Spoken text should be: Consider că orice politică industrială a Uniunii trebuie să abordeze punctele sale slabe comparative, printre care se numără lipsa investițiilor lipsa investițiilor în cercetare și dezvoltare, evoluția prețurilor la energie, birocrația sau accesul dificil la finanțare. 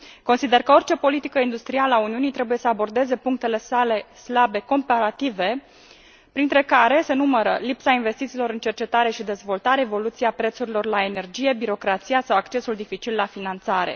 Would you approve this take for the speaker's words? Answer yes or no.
no